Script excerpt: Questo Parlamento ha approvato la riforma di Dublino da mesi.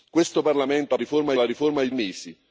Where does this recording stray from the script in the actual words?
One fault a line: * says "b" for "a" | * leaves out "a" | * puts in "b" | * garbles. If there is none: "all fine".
* says "riforma" for "approvato"
* leaves out "Dublino da"